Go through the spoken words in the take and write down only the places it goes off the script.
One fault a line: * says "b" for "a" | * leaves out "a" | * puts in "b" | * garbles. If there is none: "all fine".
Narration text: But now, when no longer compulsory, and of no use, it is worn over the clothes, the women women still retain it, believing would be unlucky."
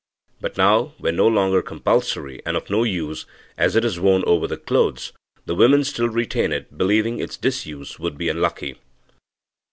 * puts in "as"
* leaves out "women"
* puts in "its disuse"